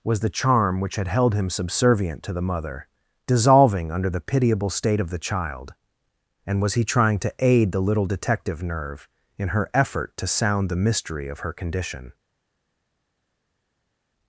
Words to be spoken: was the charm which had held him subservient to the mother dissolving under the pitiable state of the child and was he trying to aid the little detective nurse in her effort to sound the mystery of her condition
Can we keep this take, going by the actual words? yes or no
no